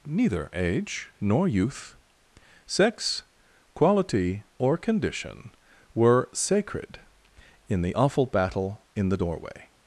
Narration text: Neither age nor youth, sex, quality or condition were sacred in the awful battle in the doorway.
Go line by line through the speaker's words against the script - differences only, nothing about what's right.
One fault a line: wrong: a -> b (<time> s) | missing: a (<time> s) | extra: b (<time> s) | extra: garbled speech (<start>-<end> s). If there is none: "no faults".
no faults